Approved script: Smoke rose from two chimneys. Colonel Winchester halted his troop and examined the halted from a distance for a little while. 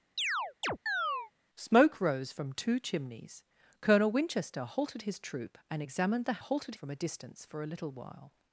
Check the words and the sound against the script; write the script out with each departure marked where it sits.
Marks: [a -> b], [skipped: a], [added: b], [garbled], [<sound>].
[chirp] Smoke rose from two chimneys. Colonel Winchester halted his troop and examined the halted from a distance for a little while.